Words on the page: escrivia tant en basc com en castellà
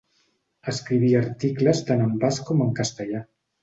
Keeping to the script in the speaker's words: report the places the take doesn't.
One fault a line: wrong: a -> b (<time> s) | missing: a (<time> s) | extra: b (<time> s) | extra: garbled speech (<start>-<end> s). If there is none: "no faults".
extra: articles (1.2 s)